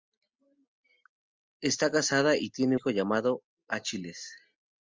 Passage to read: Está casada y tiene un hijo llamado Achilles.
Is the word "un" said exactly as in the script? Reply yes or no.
no